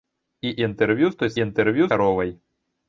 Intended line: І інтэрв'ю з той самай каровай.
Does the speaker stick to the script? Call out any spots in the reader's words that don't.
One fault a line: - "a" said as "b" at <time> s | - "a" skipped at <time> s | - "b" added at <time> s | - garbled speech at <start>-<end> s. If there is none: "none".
- "самай" said as "інтэрв'ю" at 1.4 s